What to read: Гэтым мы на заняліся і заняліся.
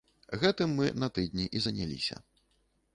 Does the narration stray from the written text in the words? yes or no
yes